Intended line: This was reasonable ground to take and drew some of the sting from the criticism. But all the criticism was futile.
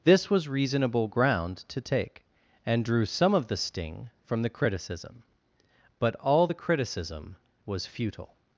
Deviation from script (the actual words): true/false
false